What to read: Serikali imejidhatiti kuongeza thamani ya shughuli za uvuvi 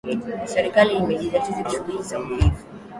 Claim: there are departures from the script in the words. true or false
true